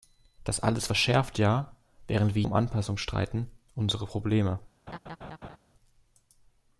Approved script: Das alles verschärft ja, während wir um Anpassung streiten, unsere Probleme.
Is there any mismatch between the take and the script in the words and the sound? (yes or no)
yes